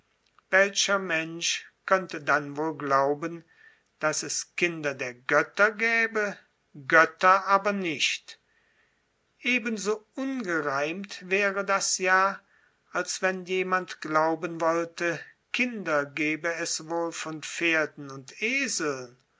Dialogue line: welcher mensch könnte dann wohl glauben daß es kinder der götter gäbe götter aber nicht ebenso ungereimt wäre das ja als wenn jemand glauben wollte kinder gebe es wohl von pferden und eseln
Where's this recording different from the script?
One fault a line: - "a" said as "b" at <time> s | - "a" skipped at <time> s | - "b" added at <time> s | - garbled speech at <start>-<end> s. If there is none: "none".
none